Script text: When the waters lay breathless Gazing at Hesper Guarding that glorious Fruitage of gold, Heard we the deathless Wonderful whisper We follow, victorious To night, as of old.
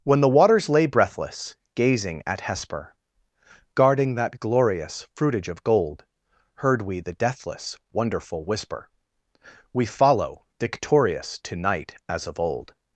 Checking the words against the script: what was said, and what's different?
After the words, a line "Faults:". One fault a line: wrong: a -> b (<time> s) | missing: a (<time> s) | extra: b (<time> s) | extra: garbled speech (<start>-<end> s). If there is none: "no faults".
When the waters lay breathless Gazing at Hesper Guarding that glorious Fruitage of gold, Heard we the deathless Wonderful whisper We follow, victorious To night, as of old.
Faults:
no faults